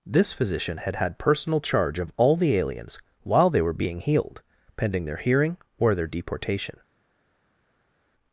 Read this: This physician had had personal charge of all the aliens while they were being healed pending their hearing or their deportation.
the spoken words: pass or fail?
pass